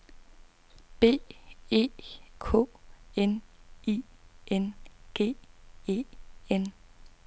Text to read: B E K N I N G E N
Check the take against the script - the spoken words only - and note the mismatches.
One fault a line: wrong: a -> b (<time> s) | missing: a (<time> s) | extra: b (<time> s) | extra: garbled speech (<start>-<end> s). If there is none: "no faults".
no faults